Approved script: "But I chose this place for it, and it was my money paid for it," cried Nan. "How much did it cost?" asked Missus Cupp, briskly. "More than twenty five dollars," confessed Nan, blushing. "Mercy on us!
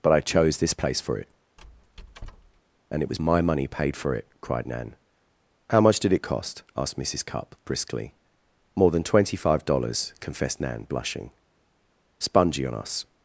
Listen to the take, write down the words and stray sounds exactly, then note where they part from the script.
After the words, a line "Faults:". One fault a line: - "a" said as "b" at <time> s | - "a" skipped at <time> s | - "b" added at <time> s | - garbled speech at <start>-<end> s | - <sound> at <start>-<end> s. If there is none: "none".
"But I chose this place for it, and it was my money paid for it," cried Nan. "How much did it cost?" asked Missus Cupp, briskly. "More than twenty five dollars," confessed Nan, blushing. "Spongy on us!
Faults:
- squeak at 1.6-2.6 s
- "Mercy" said as "Spongy" at 12.2 s